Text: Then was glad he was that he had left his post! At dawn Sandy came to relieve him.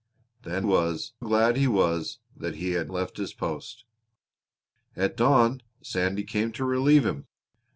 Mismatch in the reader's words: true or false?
false